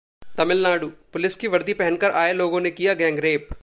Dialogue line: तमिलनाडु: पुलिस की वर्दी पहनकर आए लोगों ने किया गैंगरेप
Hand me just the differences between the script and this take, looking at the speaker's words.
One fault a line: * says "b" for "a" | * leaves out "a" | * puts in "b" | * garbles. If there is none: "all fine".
all fine